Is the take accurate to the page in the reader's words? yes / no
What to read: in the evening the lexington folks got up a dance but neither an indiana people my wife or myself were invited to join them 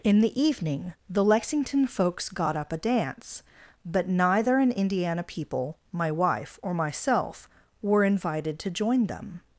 yes